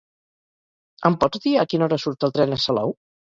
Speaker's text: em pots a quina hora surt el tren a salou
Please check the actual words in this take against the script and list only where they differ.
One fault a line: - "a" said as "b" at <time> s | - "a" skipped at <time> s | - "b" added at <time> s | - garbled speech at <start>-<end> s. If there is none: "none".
- "dir" added at 1.4 s